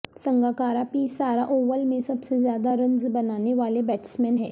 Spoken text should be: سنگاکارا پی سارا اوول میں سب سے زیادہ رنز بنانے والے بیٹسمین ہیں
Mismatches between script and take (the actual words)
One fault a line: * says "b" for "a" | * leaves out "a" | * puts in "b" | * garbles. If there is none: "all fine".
all fine